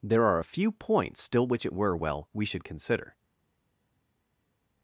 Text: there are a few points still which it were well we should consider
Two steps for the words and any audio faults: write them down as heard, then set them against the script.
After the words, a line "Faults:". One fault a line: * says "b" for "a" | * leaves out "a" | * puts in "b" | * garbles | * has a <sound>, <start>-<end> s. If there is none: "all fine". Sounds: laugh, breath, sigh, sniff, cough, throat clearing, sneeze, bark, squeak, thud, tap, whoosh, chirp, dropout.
there are a few points still which it were well we should consider
Faults:
all fine